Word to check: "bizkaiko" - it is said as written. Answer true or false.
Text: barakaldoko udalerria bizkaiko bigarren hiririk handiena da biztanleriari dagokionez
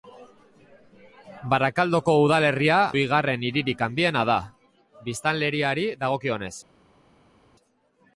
false